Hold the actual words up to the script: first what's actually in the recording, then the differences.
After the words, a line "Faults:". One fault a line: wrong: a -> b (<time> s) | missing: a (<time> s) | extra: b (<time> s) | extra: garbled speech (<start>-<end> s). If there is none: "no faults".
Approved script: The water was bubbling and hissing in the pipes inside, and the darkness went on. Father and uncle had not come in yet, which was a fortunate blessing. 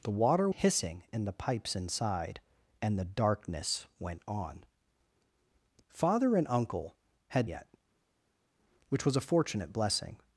The water hissing in the pipes inside, and the darkness went on. Father and uncle had yet, which was a fortunate blessing.
Faults:
missing: was bubbling and (0.5 s)
missing: not come in (7.5 s)